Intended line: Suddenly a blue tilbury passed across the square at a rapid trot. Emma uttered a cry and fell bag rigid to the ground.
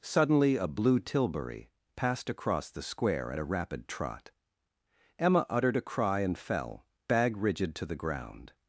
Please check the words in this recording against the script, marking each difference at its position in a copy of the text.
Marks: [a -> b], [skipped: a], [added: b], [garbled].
Suddenly a blue tilbury passed across the square at a rapid trot. Emma uttered a cry and fell bag rigid to the ground.